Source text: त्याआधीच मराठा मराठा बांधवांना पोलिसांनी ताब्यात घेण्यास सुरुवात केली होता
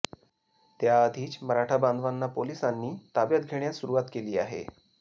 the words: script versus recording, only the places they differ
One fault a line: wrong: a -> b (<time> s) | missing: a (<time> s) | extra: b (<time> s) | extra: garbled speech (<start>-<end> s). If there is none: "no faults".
missing: मराठा (1.8 s)
wrong: होता -> आहे (4.4 s)